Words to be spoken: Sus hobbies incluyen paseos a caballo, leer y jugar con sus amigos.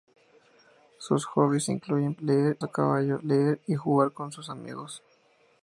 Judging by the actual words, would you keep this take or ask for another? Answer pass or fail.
fail